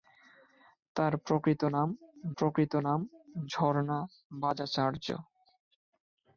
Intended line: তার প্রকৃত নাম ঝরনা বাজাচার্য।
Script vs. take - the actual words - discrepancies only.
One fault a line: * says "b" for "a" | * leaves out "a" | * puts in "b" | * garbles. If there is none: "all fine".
* puts in "প্রকৃত নাম"